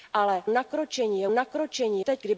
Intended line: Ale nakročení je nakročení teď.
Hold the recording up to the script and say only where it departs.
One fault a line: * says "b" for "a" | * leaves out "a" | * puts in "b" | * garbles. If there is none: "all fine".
all fine